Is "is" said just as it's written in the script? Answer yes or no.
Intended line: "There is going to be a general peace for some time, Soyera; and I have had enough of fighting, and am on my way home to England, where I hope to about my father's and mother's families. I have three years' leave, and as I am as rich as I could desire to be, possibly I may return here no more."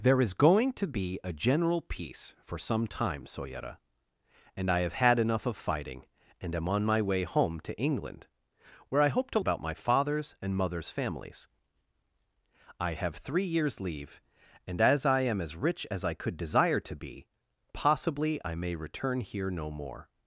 yes